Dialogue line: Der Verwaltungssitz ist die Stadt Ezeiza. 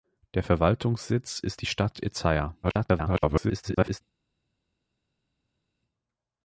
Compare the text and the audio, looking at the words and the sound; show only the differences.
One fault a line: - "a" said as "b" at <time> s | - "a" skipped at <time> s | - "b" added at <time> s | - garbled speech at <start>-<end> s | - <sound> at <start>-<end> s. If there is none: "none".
- garbled speech at 2.6-4.0 s